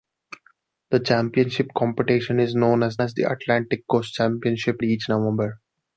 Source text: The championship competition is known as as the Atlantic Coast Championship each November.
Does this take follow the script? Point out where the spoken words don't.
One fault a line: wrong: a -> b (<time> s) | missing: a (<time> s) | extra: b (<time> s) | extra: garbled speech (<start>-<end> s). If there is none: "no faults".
no faults